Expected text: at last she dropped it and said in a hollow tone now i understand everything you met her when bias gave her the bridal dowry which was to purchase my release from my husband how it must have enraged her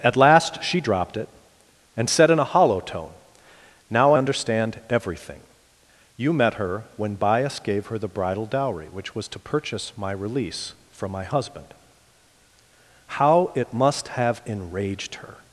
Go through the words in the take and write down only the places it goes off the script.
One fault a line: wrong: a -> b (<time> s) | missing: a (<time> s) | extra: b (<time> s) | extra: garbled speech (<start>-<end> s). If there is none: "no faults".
missing: i (4.1 s)